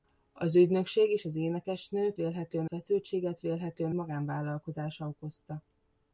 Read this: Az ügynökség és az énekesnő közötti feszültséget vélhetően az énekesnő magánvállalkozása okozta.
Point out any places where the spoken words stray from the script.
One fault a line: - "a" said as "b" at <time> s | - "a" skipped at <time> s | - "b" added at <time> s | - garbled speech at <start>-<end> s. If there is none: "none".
- "közötti" said as "vélhetően" at 2.1 s
- "az énekesnő" skipped at 3.9 s